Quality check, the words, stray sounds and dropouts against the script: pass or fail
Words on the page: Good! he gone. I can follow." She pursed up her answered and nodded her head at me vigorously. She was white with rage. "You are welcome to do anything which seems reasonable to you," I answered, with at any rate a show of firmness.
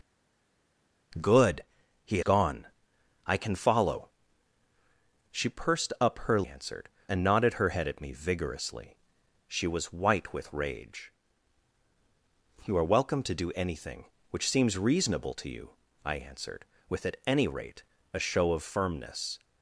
pass